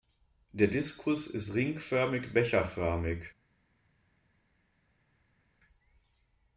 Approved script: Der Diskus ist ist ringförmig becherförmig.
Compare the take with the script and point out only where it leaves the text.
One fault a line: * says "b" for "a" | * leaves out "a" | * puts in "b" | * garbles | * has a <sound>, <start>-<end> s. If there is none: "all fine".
* leaves out "ist"